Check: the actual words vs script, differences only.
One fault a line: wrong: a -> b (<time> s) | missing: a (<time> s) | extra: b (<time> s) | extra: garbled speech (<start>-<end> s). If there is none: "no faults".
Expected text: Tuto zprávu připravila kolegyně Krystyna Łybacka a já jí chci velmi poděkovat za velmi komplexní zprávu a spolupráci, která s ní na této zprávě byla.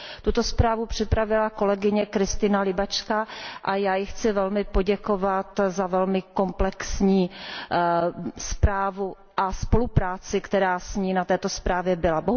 no faults